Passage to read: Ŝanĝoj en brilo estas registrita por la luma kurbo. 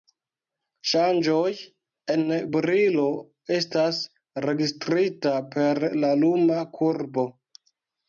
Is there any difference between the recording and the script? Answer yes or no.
yes